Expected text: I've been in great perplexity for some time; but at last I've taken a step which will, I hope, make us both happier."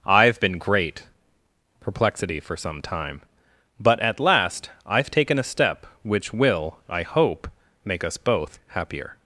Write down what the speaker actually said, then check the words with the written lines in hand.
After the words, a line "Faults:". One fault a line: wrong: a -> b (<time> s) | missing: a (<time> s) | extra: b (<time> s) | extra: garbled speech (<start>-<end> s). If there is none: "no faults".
I've been great perplexity for some time; but at last I've taken a step which will, I hope, make us both happier."
Faults:
missing: in (0.6 s)